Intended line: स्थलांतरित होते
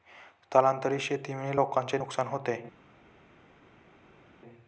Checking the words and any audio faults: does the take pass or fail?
fail